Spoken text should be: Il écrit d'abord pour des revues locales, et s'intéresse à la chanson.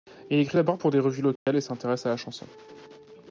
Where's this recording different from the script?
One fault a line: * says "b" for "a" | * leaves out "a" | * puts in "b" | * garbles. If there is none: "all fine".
all fine